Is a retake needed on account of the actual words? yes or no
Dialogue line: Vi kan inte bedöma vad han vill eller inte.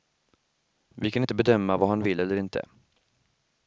no